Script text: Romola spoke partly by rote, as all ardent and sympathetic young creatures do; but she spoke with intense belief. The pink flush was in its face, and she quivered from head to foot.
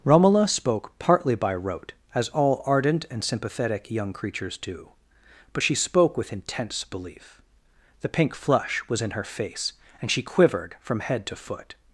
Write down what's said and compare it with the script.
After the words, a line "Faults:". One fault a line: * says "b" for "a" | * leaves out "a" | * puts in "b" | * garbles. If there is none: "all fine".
Romola spoke partly by rote, as all ardent and sympathetic young creatures do; but she spoke with intense belief. The pink flush was in her face, and she quivered from head to foot.
Faults:
* says "her" for "its"